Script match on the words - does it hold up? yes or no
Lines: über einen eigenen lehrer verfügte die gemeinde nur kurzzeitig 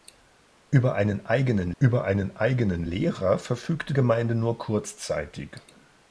no